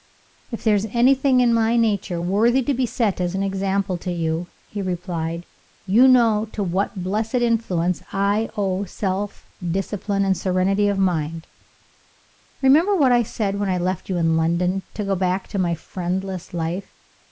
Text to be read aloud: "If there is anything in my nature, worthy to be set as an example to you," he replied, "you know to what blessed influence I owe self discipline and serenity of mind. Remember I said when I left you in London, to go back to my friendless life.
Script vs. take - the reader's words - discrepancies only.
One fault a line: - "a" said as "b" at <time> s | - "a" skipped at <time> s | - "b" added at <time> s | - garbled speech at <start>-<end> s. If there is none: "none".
- "what" added at 13.0 s